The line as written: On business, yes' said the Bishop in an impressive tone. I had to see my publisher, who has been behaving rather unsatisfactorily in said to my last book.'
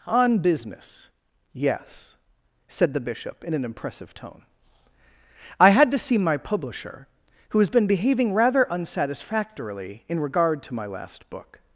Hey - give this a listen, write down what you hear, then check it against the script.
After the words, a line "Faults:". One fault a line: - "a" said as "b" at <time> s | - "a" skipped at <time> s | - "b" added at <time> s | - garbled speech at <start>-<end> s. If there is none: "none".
On business, yes' said the Bishop in an impressive tone. I had to see my publisher, who has been behaving rather unsatisfactorily in regard to my last book.'
Faults:
- "said" said as "regard" at 10.2 s